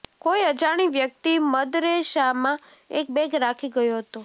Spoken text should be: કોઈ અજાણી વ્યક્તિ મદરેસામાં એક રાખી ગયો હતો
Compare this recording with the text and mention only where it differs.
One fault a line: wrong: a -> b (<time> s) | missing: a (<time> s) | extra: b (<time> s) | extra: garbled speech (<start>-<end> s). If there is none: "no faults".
extra: બેગ (3.1 s)